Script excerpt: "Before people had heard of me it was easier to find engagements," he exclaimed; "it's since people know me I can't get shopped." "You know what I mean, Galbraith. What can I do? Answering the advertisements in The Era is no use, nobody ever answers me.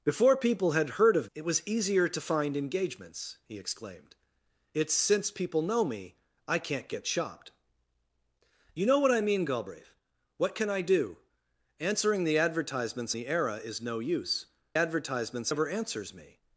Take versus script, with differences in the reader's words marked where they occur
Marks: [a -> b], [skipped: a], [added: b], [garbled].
"Before people had heard of [skipped: me] it was easier to find engagements," he exclaimed; "it's since people know me I can't get shopped." "You know what I mean, Galbraith. What can I do? Answering the advertisements [skipped: in] The Era is no use, [nobody -> advertisements] ever answers me.